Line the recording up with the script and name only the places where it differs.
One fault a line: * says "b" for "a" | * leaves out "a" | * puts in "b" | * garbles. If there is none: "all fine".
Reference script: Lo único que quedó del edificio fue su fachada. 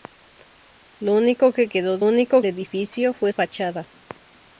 * says "único" for "del"
* leaves out "su"